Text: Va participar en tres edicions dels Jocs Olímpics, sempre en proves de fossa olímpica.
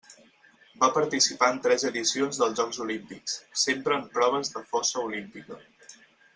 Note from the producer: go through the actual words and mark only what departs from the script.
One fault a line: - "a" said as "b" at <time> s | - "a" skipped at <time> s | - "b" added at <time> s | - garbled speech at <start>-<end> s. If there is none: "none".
none